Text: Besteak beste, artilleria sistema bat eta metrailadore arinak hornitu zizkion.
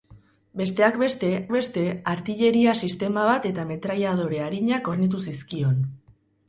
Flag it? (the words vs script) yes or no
yes